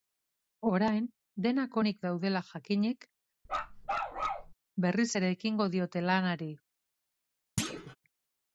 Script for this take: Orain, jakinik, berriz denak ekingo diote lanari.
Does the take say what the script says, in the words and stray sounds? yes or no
no